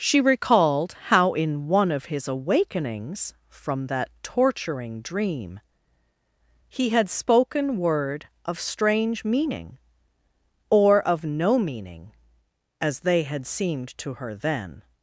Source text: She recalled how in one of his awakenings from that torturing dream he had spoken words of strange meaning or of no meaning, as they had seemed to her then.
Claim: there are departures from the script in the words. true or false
true